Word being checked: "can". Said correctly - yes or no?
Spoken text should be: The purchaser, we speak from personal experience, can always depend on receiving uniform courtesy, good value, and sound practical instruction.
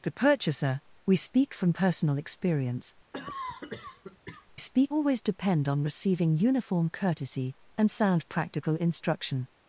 no